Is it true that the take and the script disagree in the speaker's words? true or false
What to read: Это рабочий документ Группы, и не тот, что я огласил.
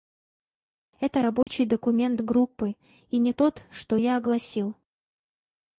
false